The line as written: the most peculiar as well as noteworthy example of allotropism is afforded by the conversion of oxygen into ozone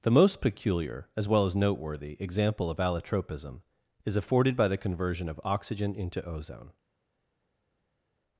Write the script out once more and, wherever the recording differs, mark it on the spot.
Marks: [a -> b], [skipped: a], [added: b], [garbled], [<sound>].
the most peculiar as well as noteworthy example of allotropism is afforded by the conversion of oxygen into ozone